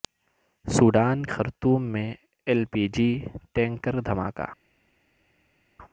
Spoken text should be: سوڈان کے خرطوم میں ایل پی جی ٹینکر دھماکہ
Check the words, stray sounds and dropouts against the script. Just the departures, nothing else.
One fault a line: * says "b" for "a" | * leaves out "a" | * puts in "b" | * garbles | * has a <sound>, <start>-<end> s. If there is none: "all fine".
* leaves out "کے"